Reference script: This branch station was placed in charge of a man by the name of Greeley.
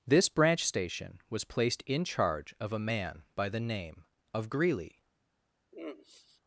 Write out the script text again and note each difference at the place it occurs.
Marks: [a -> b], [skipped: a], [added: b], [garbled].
This branch station was placed in charge of a man by the name of Greeley.